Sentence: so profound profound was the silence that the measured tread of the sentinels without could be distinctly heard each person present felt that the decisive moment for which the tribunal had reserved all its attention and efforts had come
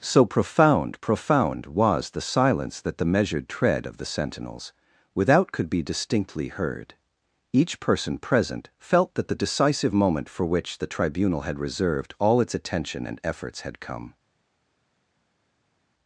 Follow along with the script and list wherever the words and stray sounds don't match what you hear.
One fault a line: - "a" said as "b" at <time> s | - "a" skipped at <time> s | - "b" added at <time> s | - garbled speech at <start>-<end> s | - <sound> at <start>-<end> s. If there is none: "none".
none